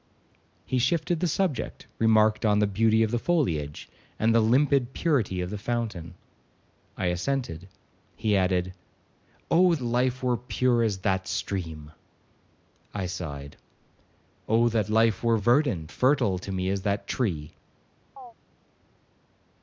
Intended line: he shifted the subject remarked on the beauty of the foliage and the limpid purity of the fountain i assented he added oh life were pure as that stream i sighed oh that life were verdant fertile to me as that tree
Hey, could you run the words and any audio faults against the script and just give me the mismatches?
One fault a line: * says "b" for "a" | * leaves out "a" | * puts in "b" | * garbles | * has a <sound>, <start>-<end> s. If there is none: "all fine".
* has a chirp, 18.2-18.3 s